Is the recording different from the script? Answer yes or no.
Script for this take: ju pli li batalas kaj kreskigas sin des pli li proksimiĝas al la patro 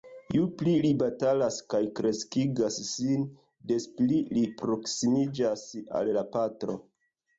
no